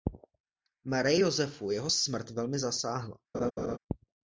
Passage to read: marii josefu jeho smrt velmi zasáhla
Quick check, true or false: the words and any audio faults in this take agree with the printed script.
false